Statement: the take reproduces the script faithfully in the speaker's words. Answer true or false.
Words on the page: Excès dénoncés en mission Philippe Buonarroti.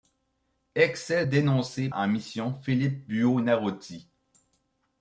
true